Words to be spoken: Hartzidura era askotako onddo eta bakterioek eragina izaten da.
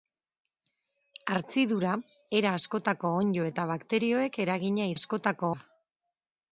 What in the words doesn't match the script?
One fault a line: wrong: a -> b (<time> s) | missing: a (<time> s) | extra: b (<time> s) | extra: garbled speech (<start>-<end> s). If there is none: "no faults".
wrong: izaten -> askotako (5.0 s)